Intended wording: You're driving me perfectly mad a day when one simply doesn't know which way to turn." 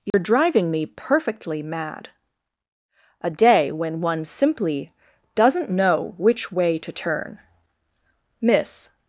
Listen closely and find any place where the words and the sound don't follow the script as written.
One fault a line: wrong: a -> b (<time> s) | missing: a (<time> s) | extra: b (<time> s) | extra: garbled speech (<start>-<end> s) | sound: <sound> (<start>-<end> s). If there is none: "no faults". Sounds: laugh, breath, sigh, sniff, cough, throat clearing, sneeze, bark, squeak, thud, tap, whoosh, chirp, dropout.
sound: dropout (0.1-0.1 s)
extra: Miss (8.4 s)